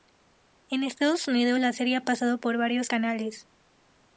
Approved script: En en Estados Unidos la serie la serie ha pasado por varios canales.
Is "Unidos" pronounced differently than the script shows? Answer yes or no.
no